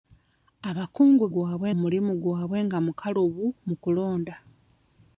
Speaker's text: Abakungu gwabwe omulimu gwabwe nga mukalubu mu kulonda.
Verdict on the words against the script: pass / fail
pass